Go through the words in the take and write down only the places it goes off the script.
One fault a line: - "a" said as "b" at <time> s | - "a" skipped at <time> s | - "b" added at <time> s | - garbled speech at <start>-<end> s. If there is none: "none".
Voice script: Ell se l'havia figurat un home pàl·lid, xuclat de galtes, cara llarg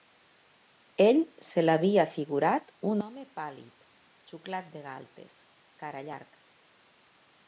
none